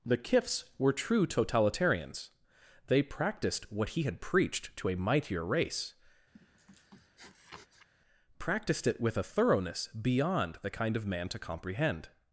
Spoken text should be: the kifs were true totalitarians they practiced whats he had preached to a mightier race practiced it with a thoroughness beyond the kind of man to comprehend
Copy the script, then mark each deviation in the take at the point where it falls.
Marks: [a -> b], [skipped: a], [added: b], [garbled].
the kifs were true totalitarians they practiced [whats -> what] he had preached to a mightier race practiced it with a thoroughness beyond the kind of man to comprehend